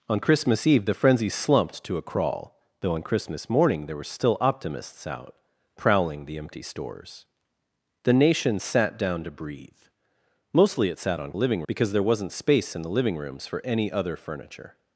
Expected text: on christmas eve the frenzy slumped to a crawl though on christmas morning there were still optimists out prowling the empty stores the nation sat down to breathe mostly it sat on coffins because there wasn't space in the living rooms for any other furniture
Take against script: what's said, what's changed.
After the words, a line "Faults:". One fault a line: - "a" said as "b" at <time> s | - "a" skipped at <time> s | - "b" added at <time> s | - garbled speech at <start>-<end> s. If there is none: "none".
on christmas eve the frenzy slumped to a crawl though on christmas morning there were still optimists out prowling the empty stores the nation sat down to breathe mostly it sat on living because there wasn't space in the living rooms for any other furniture
Faults:
- "coffins" said as "living" at 11.3 s